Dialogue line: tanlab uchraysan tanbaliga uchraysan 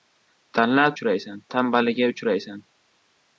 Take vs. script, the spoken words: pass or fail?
pass